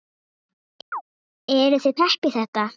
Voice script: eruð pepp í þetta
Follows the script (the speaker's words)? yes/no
no